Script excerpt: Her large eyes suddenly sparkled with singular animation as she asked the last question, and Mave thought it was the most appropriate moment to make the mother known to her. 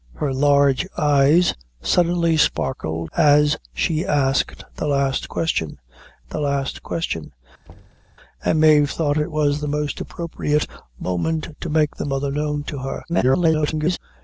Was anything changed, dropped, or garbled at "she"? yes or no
yes